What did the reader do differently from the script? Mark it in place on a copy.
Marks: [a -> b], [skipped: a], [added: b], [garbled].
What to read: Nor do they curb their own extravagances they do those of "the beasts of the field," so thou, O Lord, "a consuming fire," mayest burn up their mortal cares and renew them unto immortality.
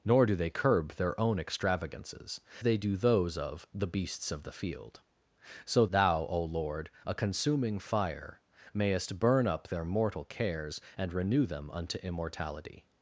Nor do they curb their own extravagances they do those of "the beasts of the field," so thou, O Lord, "a consuming fire," mayest burn up their mortal cares and renew them unto immortality.